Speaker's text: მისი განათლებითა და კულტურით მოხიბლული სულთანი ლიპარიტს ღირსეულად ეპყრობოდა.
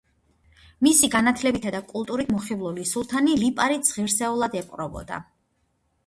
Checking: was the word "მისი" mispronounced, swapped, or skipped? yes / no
no